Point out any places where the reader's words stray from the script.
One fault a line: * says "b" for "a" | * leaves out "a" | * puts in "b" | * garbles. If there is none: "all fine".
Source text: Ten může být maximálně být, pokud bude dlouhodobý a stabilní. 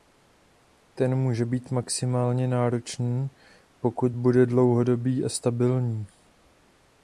* says "náročný" for "být"